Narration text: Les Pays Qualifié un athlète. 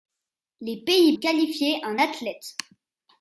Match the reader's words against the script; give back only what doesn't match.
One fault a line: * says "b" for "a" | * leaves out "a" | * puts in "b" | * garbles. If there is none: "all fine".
all fine